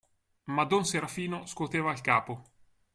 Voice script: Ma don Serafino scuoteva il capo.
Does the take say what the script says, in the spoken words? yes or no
yes